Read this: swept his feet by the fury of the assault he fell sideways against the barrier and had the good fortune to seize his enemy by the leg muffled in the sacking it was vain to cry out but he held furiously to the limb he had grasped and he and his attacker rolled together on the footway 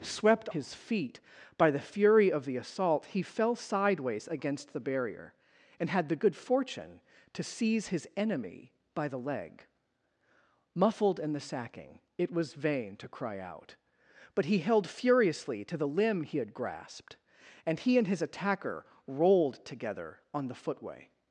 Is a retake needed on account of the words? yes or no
no